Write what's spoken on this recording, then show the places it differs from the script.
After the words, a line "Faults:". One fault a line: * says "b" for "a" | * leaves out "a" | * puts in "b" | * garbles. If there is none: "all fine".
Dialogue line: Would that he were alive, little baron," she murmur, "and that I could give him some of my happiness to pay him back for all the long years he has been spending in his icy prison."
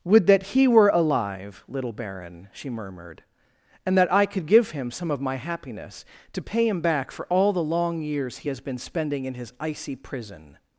Would that he were alive, little baron," she murmured, "and that I could give him some of my happiness to pay him back for all the long years he has been spending in his icy prison."
Faults:
* says "murmured" for "murmur"